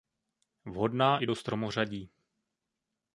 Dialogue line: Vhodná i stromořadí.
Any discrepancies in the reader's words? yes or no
yes